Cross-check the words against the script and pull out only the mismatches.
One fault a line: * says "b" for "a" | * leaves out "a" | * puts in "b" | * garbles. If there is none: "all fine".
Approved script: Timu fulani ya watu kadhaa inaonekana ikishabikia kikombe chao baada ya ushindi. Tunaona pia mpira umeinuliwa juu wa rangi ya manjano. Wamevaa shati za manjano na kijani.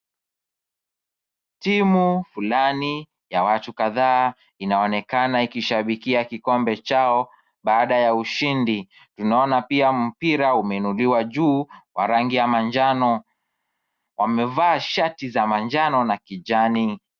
all fine